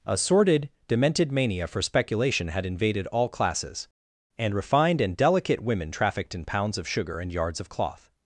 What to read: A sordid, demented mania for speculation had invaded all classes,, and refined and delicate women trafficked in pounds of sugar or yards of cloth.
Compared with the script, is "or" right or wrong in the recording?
wrong